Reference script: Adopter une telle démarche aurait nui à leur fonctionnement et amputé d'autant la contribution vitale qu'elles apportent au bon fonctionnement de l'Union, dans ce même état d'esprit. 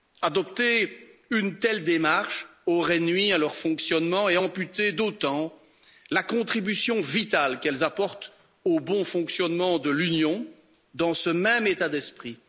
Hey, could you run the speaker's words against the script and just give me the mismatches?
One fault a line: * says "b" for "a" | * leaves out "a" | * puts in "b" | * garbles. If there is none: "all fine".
all fine